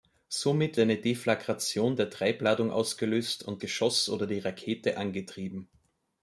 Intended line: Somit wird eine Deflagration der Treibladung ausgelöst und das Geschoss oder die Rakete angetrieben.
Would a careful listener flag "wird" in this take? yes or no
yes